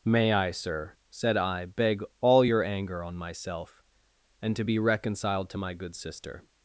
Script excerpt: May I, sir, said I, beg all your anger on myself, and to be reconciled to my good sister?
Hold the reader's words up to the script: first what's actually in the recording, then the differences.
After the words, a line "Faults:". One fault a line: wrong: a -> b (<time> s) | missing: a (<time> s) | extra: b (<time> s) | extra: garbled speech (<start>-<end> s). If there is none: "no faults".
May I, sir, said I, beg all your anger on myself, and to be reconciled to my good sister?
Faults:
no faults